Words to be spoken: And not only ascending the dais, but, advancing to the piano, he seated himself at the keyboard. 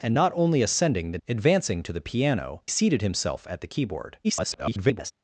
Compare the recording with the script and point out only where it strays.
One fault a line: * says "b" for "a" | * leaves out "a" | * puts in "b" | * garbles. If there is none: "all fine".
* leaves out "dais but"
* leaves out "he"
* garbles